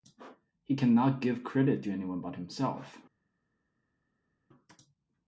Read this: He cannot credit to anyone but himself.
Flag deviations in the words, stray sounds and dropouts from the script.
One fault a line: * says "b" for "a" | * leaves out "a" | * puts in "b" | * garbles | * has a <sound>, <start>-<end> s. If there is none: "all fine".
* puts in "give"